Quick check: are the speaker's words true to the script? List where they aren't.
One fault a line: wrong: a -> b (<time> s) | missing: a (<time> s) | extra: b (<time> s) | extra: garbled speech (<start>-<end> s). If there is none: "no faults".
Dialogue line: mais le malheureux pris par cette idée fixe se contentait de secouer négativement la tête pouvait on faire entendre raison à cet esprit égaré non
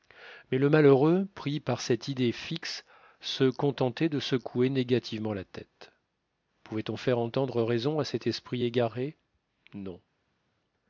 no faults